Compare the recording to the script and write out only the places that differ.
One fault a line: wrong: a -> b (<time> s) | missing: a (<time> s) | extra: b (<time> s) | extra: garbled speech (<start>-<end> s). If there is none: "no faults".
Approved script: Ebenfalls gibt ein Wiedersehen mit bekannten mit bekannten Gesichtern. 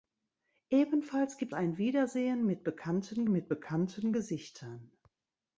no faults